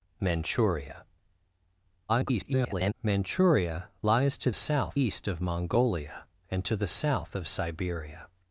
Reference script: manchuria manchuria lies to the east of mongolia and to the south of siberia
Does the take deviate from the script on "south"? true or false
false